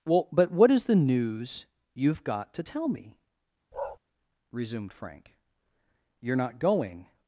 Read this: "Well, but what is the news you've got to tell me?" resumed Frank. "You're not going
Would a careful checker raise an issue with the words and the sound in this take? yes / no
yes